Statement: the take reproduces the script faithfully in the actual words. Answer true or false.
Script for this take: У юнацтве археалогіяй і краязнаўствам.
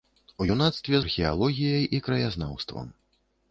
true